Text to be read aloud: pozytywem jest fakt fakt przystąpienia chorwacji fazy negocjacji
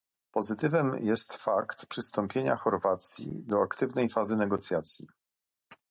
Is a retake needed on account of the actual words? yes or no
yes